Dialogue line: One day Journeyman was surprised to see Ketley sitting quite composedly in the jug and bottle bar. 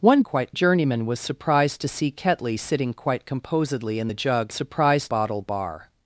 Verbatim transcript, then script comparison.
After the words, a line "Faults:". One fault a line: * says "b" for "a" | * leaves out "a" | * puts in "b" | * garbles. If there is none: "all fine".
One quite Journeyman was surprised to see Ketley sitting quite composedly in the jug surprised bottle bar.
Faults:
* says "quite" for "day"
* says "surprised" for "and"